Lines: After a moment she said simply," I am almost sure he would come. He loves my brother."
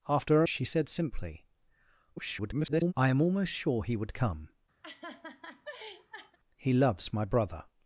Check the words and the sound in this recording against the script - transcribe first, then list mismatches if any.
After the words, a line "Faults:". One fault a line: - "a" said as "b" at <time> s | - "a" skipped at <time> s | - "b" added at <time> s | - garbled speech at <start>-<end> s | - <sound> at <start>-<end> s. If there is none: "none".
After a she said simply," [garbled] I am almost sure he would come. He loves my brother."
Faults:
- "moment" skipped at 0.5 s
- garbled speech at 2.2-2.9 s
- laugh at 4.8-6.4 s